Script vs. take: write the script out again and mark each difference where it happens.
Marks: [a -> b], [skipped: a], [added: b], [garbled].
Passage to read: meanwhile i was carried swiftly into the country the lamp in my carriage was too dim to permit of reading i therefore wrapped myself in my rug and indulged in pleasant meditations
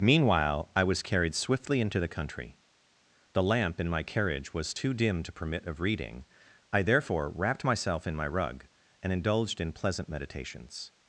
meanwhile i was carried swiftly into the country the lamp in my carriage was too dim to permit of reading i therefore wrapped myself in my rug and indulged in pleasant meditations